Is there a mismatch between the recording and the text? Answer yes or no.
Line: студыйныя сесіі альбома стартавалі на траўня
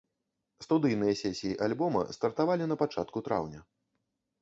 yes